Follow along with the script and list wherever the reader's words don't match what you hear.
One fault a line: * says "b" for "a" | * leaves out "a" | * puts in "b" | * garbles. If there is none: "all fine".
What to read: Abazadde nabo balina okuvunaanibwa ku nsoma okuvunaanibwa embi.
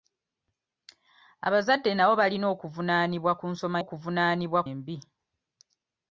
all fine